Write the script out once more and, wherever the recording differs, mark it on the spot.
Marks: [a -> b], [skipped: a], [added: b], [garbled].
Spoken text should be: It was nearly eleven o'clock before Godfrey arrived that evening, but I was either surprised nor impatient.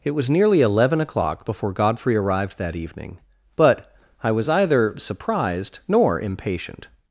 It was nearly eleven o'clock before Godfrey arrived that evening, but I was either surprised nor impatient.